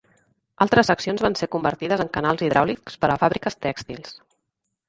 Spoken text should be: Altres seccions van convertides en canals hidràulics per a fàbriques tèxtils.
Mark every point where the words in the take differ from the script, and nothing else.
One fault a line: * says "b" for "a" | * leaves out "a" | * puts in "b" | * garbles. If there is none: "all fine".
* puts in "ser"